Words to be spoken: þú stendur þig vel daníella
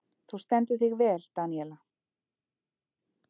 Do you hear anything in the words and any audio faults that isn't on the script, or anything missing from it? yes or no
no